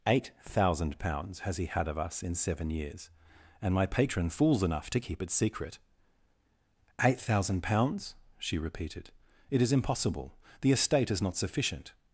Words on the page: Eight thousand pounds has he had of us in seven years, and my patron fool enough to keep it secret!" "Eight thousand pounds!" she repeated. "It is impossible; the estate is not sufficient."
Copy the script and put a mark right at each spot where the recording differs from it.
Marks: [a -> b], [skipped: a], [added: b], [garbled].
Eight thousand pounds has he had of us in seven years, and my patron [fool -> fools] enough to keep it secret!" "Eight thousand pounds!" she repeated. "It is impossible; the estate is not sufficient."